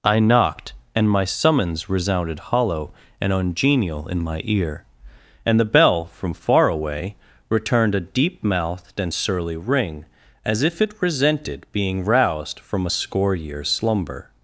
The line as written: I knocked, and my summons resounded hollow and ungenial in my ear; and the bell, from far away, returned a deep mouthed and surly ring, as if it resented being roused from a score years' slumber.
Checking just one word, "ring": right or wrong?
right